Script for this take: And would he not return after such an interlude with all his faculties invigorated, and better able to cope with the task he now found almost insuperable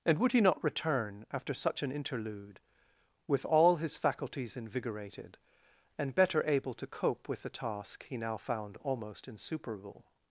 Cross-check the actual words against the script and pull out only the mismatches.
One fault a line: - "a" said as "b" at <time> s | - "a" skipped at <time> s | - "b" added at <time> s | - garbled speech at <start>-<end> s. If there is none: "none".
none